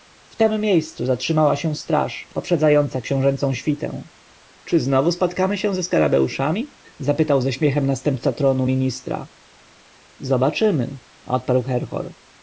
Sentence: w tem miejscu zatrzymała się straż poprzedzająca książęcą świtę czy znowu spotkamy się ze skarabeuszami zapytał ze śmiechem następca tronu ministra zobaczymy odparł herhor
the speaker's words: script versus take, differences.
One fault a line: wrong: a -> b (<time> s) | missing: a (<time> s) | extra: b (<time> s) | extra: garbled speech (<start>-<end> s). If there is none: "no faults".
no faults